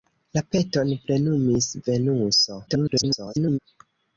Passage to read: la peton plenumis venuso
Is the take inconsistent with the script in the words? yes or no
yes